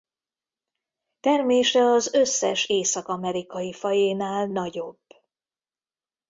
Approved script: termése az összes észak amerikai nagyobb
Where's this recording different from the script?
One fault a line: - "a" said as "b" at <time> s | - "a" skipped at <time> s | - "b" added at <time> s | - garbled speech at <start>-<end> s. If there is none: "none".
- "fajénál" added at 3.7 s